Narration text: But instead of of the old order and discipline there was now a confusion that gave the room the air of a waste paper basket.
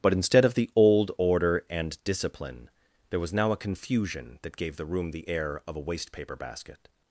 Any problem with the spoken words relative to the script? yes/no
yes